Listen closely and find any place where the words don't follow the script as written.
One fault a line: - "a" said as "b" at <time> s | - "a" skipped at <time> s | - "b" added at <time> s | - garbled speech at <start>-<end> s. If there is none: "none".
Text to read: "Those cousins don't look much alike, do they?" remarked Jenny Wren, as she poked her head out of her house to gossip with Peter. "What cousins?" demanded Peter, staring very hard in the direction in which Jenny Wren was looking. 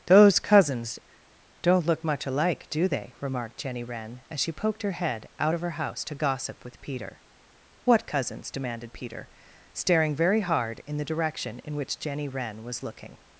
none